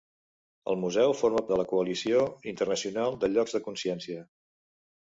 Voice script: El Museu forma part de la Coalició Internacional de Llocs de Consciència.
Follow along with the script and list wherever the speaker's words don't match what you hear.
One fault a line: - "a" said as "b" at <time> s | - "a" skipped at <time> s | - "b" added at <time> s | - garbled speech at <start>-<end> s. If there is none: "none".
- "part" skipped at 1.4 s